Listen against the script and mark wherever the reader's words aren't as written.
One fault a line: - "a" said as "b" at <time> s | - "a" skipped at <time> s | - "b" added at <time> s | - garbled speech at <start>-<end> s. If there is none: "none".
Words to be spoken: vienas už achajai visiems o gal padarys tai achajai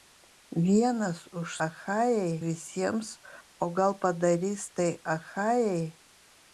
none